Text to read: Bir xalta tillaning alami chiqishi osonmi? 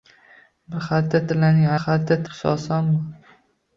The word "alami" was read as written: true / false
false